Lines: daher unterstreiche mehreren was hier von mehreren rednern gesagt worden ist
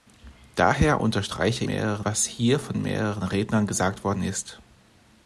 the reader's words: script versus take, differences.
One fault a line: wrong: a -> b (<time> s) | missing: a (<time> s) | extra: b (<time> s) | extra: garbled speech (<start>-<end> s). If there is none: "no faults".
no faults